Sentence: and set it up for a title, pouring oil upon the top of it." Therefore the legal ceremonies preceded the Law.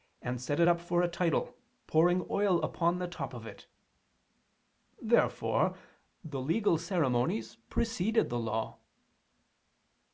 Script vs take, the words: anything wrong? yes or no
no